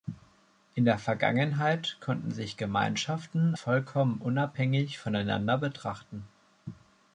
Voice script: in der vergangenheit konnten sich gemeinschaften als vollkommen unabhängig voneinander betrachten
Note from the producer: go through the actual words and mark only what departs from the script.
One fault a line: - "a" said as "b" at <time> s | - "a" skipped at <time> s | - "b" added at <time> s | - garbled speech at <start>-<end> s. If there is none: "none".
- "als" skipped at 3.5 s